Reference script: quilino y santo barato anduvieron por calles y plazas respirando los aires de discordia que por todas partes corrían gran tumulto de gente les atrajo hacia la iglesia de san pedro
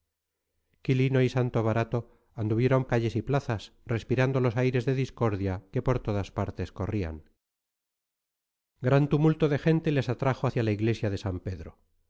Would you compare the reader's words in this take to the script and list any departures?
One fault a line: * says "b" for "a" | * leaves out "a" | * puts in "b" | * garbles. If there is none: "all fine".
* leaves out "por"